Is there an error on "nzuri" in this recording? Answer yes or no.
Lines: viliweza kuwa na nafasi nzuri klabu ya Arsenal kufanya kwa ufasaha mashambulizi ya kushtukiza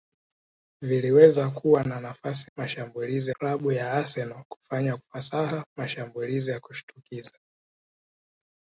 yes